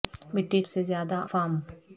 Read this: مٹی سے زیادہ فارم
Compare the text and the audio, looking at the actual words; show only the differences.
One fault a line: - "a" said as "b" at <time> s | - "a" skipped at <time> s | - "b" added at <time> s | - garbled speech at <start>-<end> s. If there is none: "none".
none